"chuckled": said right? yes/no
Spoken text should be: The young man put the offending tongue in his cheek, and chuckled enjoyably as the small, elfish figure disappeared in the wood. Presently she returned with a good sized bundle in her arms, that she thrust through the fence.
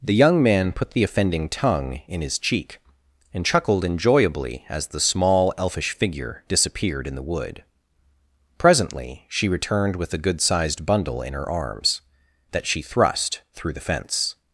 yes